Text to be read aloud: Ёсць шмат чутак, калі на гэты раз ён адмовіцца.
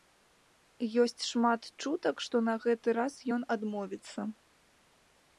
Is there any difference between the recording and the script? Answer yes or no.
yes